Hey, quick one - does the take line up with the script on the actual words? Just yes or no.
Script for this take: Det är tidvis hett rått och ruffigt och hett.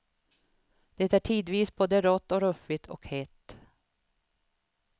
no